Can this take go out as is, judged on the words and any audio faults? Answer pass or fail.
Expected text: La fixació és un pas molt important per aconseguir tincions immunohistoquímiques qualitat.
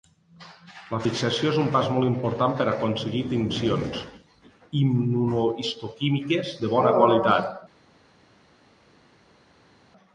fail